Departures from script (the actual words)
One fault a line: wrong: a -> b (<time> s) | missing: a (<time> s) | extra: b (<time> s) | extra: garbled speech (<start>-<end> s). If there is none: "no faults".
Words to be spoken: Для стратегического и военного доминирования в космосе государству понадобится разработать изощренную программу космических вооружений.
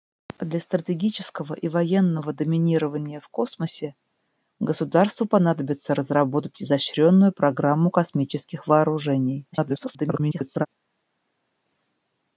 extra: garbled speech (9.5-10.7 s)